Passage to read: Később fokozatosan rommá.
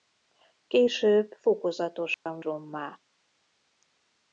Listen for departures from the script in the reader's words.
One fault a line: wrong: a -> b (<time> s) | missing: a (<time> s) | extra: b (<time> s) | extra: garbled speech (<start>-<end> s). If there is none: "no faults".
no faults